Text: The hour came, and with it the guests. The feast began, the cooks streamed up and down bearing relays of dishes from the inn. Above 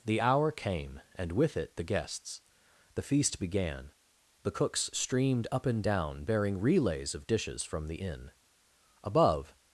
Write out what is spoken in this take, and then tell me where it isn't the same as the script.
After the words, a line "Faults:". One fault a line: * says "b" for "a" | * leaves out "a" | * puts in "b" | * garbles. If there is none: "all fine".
The hour came, and with it the guests. The feast began, the cooks streamed up and down bearing relays of dishes from the inn. Above
Faults:
all fine